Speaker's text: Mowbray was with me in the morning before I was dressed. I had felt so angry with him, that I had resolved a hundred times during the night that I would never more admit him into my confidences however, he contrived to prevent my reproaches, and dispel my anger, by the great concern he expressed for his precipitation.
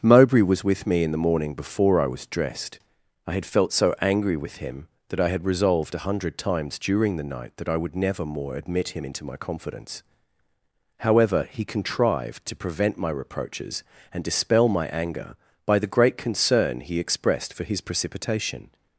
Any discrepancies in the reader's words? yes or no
yes